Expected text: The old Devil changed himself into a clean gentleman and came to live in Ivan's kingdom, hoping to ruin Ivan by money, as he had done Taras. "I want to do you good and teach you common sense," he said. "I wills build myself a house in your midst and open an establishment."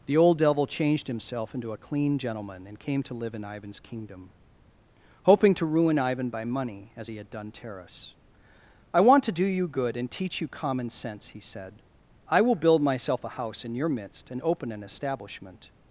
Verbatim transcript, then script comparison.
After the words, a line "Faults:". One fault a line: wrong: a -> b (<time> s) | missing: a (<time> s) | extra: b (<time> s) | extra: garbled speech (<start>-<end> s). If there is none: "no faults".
The old Devil changed himself into a clean gentleman and came to live in Ivan's kingdom, hoping to ruin Ivan by money, as he had done Taras. "I want to do you good and teach you common sense," he said. "I will build myself a house in your midst and open an establishment."
Faults:
wrong: wills -> will (12.4 s)